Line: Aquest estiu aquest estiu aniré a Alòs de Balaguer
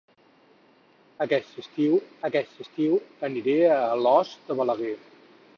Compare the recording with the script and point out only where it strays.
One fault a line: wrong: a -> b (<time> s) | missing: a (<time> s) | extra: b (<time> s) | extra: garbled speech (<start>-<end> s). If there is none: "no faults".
no faults